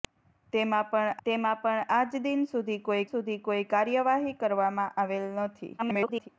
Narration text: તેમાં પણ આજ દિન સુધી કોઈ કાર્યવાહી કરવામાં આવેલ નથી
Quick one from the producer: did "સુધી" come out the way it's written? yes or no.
yes